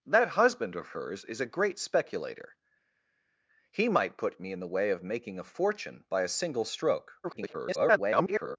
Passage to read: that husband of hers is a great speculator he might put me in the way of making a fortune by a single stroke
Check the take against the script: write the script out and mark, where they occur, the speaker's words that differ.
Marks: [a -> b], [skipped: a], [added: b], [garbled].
that husband of hers is a great speculator he might put me in the way of making a fortune by a single stroke [garbled]